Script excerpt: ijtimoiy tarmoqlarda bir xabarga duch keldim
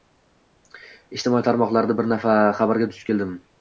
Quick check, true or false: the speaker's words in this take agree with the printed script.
true